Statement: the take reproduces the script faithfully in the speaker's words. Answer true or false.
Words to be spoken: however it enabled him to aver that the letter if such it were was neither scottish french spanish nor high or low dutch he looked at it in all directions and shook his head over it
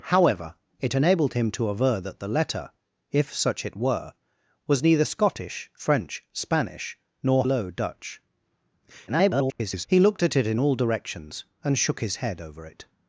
false